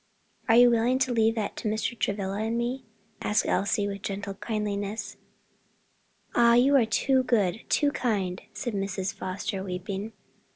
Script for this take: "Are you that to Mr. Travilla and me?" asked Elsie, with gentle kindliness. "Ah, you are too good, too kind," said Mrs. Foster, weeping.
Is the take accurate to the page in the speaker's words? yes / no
no